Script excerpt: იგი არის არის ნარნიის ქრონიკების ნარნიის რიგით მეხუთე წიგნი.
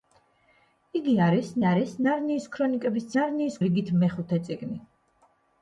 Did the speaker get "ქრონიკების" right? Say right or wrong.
right